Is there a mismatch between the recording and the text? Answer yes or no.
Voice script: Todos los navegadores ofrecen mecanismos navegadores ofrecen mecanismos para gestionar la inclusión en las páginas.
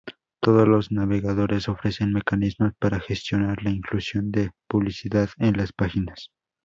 yes